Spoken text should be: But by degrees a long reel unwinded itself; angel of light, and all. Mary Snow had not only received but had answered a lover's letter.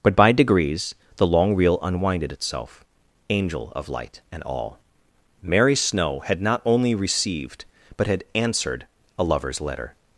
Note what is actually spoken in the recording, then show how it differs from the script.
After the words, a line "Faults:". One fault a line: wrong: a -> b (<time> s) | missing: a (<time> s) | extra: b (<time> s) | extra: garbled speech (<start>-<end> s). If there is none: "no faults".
But by degrees the long reel unwinded itself; angel of light, and all. Mary Snow had not only received but had answered a lover's letter.
Faults:
wrong: a -> the (1.2 s)